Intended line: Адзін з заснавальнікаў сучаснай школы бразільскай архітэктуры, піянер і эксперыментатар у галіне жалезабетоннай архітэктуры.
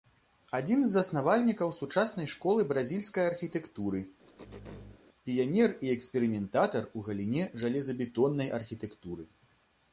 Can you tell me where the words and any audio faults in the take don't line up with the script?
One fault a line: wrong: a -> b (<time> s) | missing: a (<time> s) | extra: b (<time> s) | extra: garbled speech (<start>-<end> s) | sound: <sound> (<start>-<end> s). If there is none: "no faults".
sound: throat clearing (4.3-5.0 s)